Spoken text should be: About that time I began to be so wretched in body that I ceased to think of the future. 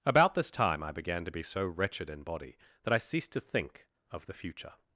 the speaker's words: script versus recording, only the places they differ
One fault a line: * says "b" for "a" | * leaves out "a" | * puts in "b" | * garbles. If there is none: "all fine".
* says "this" for "that"